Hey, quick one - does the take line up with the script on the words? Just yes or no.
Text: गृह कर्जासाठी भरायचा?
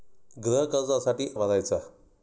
yes